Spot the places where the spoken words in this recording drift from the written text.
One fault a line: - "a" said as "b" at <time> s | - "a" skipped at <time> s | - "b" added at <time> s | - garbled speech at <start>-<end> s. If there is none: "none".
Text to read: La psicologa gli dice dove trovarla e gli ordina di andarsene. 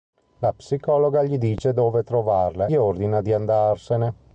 - "e" skipped at 2.7 s